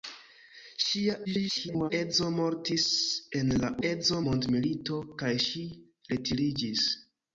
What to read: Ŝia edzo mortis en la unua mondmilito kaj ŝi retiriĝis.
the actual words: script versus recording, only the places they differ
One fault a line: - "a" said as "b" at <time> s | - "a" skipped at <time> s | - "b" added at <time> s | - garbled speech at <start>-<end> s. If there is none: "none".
- garbled speech at 1.2-1.9 s
- "unua" said as "edzo" at 3.9 s